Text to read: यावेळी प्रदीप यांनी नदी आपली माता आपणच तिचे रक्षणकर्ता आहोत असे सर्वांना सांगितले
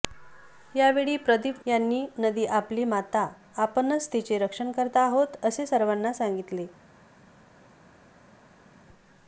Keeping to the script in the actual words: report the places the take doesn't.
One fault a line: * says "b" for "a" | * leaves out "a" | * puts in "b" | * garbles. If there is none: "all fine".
all fine